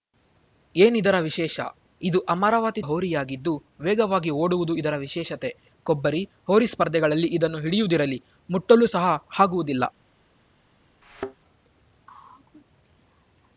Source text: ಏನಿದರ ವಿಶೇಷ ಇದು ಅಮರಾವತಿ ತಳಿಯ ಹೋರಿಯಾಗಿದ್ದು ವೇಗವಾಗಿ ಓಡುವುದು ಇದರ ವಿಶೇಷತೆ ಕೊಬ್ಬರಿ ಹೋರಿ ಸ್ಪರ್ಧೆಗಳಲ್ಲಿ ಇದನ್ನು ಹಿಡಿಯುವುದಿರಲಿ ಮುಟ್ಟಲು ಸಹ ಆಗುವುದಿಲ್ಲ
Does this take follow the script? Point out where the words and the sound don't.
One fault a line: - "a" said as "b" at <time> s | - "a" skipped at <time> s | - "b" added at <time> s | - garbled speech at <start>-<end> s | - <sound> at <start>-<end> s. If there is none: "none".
- "ತಳಿಯ" skipped at 2.8 s
- thud at 11.0-11.4 s